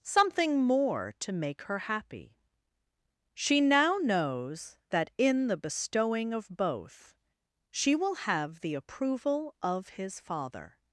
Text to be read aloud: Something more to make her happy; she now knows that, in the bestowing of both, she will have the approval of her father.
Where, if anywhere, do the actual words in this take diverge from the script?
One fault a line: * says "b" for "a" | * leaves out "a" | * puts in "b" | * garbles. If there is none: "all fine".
* says "his" for "her"